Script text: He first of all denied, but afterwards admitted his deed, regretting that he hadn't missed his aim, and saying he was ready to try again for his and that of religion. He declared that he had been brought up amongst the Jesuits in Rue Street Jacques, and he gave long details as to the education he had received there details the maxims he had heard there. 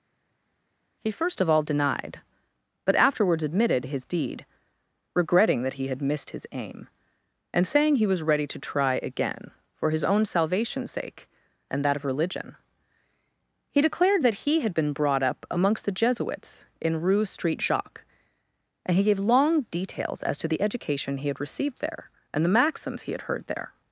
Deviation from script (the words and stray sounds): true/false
true